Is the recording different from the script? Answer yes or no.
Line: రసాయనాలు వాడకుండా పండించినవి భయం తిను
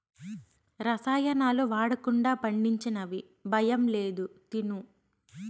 yes